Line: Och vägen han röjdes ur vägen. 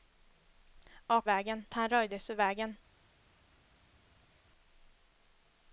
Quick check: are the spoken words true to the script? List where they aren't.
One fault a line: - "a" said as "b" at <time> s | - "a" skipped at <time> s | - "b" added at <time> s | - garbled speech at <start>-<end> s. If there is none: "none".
none